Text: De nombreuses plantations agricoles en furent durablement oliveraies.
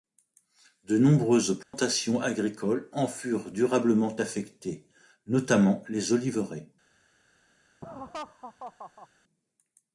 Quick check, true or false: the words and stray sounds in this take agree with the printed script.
false